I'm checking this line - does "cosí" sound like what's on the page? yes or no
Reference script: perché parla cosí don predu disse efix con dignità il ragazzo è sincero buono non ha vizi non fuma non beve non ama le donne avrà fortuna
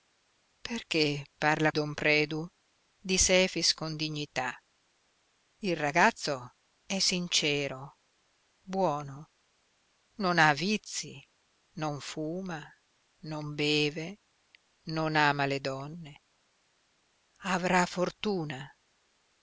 no